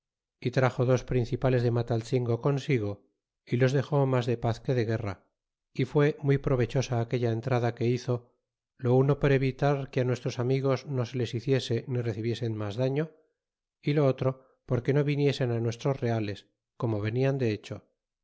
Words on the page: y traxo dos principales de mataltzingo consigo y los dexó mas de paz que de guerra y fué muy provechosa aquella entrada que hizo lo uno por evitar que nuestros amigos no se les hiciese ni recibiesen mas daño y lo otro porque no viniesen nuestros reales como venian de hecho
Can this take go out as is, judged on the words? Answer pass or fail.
pass